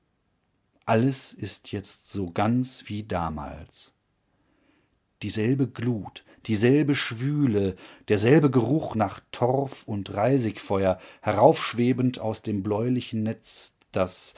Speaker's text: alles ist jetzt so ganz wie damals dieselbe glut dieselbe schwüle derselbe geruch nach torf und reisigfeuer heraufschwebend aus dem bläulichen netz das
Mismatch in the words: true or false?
false